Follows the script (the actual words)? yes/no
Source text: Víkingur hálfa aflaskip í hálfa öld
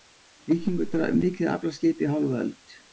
no